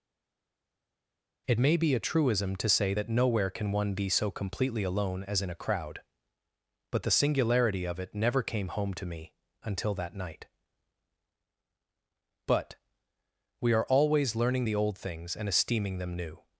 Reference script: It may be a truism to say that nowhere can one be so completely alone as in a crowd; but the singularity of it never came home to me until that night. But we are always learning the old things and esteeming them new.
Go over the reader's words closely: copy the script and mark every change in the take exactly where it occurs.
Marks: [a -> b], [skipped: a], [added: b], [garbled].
It may be a truism to say that nowhere can one be so completely alone as in a crowd; but the singularity of it never came home to me until that night. But we are always learning the old things and esteeming them new.